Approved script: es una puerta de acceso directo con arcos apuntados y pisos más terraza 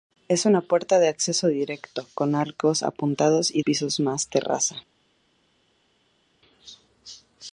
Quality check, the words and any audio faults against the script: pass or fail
pass